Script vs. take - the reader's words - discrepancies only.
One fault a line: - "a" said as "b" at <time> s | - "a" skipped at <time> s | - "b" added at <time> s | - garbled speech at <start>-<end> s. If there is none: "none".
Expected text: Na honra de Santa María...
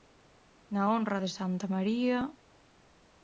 none